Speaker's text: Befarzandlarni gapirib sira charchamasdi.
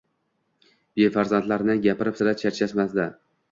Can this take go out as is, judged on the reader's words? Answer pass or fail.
pass